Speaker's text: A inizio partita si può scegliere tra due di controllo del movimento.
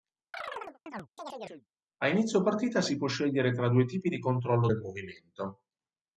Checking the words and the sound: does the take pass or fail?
fail